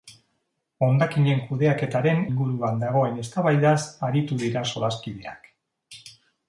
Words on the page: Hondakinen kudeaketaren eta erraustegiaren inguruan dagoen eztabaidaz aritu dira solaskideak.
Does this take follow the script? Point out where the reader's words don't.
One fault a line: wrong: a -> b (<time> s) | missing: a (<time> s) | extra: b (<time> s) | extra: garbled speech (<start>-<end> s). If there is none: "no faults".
missing: eta erraustegiaren (2.2 s)